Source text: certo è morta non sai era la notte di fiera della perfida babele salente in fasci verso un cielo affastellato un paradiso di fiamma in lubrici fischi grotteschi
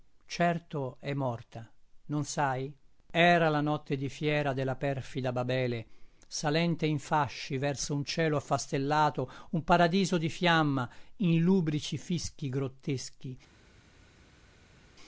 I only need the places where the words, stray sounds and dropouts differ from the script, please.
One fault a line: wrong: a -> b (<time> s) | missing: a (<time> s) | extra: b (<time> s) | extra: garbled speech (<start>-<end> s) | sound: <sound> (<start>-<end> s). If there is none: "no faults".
no faults